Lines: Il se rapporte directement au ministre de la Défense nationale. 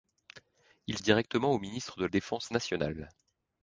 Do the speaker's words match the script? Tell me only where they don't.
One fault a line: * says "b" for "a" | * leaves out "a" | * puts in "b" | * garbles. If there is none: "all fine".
* leaves out "se rapporte"
* leaves out "la"